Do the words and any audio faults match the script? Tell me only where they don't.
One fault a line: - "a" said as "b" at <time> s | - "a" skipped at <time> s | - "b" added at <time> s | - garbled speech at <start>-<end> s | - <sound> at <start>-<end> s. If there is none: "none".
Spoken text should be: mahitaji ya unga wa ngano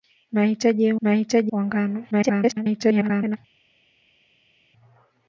- "unga" said as "mahitaji" at 1.0 s
- garbled speech at 2.1-3.4 s